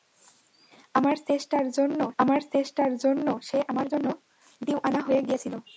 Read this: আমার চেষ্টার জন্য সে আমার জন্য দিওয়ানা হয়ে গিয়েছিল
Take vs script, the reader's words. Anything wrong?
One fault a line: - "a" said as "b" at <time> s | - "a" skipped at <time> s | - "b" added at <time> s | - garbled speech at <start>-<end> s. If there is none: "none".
- "আমার চেষ্টার জন্য" added at 2.2 s